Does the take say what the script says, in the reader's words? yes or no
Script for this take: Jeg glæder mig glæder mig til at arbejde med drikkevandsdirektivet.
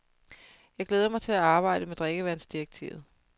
no